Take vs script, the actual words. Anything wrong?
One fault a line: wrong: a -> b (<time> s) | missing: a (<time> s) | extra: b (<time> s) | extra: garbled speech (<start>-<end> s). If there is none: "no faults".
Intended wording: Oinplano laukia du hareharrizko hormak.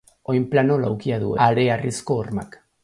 no faults